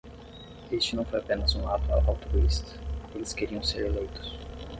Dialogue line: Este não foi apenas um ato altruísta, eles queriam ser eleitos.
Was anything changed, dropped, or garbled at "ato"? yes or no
no